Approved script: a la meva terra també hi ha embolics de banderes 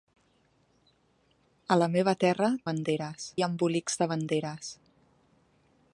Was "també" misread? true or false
true